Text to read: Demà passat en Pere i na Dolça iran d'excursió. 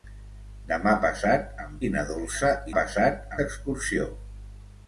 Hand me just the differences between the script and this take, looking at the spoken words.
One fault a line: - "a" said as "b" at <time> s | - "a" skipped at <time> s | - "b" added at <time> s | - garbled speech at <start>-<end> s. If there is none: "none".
- "Pere" skipped at 1.8 s
- "iran" said as "passat" at 2.8 s